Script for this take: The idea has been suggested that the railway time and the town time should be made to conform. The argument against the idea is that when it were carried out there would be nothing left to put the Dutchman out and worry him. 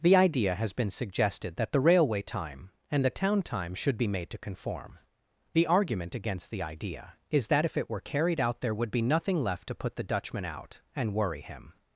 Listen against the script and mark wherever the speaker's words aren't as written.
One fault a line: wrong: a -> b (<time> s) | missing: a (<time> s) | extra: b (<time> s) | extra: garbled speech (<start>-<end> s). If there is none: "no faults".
wrong: when -> if (7.7 s)